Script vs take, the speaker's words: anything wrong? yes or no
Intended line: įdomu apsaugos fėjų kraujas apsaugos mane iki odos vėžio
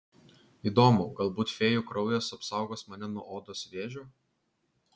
yes